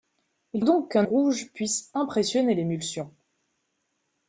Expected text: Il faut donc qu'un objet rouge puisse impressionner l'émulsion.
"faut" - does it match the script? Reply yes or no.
no